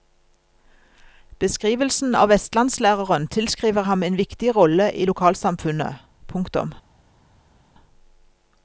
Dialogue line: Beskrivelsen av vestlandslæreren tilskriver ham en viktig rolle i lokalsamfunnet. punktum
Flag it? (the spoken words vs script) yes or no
no